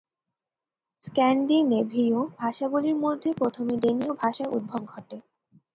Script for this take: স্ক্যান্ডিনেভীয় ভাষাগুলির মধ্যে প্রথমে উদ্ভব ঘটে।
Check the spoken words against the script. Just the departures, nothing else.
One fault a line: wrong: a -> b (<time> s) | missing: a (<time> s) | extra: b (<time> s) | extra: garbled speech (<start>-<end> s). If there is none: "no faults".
extra: ডেনীয় ভাষার (3.8 s)